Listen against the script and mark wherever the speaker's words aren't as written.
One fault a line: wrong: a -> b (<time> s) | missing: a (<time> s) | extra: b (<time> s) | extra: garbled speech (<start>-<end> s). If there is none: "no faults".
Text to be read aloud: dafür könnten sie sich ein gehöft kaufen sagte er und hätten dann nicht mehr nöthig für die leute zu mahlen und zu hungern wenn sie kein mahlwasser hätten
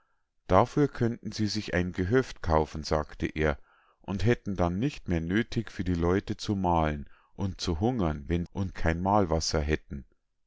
wrong: sie -> und (8.5 s)